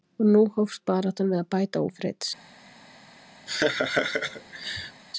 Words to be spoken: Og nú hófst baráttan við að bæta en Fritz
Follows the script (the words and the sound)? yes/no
no